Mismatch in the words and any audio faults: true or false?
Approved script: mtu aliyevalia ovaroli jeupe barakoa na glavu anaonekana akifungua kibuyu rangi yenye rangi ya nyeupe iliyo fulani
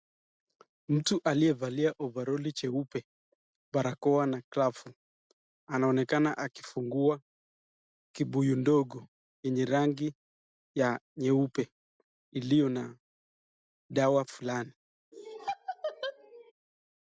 true